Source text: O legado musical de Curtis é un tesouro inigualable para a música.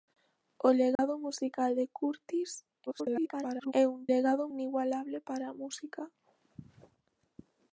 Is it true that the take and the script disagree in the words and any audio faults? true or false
true